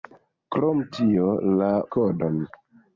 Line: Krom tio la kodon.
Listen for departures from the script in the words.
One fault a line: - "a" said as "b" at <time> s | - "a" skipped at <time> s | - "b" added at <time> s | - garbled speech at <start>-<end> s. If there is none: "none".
none